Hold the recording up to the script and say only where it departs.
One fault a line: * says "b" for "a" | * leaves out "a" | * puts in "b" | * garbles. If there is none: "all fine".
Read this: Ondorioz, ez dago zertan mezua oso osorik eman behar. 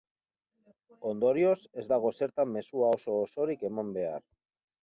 all fine